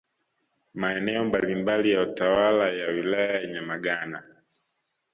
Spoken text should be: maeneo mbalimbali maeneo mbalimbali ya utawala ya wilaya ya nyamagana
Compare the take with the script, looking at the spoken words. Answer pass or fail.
fail